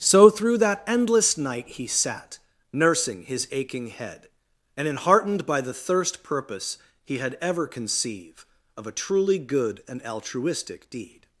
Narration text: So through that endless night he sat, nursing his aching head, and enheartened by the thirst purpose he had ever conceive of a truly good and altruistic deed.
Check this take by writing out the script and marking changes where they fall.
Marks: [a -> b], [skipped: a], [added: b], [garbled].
So through that endless night he sat, nursing his aching head, and enheartened by the thirst purpose he had ever conceive of a truly good and altruistic deed.